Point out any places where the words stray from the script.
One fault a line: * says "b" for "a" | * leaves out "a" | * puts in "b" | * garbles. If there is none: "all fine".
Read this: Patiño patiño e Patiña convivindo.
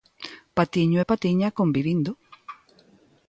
* leaves out "patiño"